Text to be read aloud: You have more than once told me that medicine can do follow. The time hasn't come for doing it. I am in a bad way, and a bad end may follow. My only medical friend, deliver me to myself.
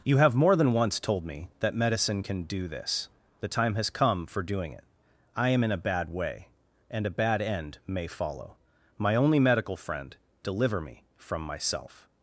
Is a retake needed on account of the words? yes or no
yes